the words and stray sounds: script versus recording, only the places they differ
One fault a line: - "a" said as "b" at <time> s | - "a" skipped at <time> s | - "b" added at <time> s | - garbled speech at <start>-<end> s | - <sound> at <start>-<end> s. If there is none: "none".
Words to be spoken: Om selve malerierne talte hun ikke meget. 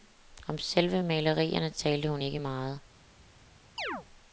- chirp at 3.8-4.1 s